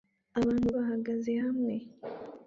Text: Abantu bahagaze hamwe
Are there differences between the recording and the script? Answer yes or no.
no